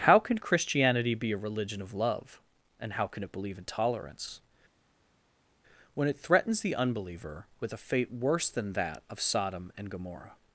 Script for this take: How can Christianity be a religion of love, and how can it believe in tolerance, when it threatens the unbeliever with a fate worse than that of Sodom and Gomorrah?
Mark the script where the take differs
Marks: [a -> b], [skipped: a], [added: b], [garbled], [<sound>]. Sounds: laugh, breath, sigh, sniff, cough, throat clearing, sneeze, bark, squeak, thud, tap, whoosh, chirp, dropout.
How can Christianity be a religion of love, and how can it believe in tolerance, when it threatens the unbeliever with a fate worse than that of Sodom and Gomorrah?